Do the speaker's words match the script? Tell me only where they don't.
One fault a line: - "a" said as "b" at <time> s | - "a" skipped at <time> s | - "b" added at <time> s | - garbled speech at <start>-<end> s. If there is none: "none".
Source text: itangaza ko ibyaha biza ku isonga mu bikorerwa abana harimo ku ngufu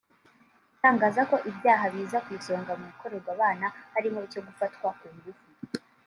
- "icyo gufatwa" added at 4.3 s